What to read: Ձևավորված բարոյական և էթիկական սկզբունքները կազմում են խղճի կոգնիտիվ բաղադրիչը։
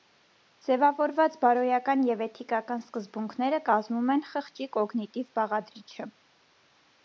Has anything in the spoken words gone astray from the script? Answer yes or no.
no